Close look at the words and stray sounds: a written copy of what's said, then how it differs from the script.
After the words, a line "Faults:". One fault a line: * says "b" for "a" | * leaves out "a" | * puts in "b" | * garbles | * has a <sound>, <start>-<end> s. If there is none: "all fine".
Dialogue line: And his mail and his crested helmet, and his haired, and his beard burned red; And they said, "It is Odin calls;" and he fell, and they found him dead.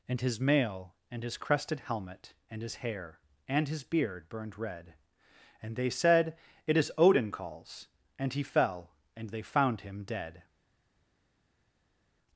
And his mail and his crested helmet, and his hair, and his beard burned red; And they said, "It is Odin calls;" and he fell, and they found him dead.
Faults:
* says "hair" for "haired"